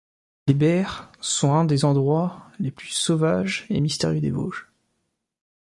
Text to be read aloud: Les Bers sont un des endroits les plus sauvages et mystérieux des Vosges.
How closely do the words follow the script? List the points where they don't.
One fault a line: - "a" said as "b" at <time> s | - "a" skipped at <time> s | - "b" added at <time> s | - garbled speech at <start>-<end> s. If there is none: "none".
none